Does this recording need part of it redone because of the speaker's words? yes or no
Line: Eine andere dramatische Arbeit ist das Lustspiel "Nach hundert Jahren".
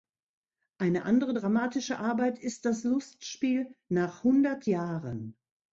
no